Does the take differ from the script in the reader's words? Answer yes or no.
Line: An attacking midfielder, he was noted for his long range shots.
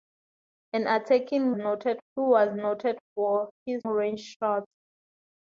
yes